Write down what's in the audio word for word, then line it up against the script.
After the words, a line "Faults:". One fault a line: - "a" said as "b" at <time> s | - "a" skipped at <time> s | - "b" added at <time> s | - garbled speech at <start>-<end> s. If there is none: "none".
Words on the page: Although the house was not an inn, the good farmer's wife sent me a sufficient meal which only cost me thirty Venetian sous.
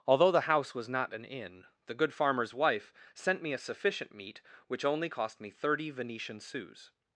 Although the house was not an inn, the good farmer's wife sent me a sufficient meat which only cost me thirty Venetian sous.
Faults:
- "meal" said as "meat" at 4.1 s